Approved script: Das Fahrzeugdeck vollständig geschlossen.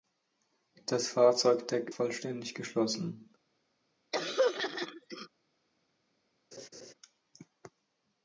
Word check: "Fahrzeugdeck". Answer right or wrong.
right